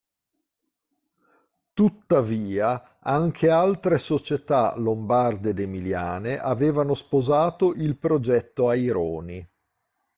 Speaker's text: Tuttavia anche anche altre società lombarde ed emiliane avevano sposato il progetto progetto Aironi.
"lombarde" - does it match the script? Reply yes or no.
yes